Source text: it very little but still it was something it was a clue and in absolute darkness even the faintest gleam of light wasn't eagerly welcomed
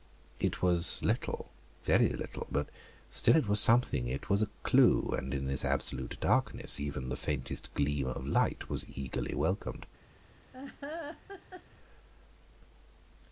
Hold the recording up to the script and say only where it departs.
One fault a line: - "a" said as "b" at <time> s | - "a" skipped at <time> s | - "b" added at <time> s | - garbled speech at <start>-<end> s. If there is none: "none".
- "was little" added at 0.6 s
- "this" added at 5.5 s
- "wasn't" said as "was" at 8.7 s